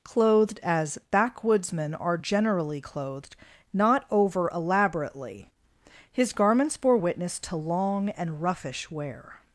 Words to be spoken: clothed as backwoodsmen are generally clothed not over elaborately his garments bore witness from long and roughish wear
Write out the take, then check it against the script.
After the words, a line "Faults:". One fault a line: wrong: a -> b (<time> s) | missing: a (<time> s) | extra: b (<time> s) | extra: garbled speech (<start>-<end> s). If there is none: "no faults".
clothed as backwoodsmen are generally clothed not over elaborately his garments bore witness to long and roughish wear
Faults:
wrong: from -> to (7.4 s)